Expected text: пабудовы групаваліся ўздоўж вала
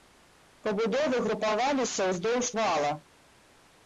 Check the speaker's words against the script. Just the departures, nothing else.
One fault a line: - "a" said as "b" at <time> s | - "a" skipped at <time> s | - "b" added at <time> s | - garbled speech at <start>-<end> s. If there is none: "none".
none